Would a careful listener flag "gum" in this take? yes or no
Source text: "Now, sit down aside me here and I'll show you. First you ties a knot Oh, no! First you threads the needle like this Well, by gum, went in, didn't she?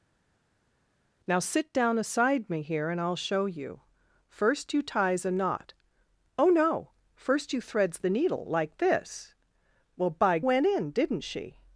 yes